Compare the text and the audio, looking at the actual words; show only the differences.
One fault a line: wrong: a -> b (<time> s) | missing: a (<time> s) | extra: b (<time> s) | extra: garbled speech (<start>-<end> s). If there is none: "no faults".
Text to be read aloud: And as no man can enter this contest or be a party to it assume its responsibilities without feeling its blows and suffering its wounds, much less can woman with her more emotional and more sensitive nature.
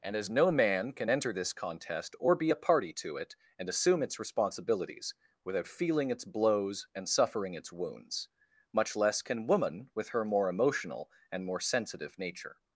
extra: and (3.6 s)